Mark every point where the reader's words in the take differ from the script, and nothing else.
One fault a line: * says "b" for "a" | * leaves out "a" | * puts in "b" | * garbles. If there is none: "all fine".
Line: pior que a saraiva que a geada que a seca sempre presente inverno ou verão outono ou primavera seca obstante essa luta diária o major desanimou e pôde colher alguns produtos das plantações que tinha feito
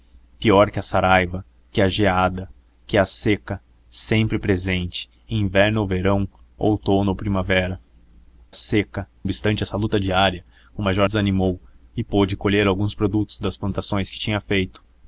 all fine